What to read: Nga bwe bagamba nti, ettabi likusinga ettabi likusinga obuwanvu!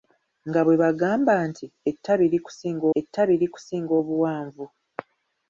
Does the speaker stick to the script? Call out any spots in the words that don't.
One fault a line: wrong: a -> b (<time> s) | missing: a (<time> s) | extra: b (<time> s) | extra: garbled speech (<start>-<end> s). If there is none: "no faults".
no faults